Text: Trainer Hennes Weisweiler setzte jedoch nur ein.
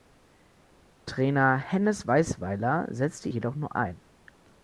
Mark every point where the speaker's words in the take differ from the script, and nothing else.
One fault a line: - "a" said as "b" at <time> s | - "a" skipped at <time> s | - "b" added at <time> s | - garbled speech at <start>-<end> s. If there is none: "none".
none